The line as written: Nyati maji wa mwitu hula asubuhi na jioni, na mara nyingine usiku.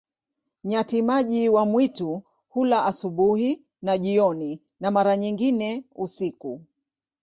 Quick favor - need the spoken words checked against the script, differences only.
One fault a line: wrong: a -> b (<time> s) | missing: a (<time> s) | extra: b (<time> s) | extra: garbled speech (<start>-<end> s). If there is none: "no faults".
no faults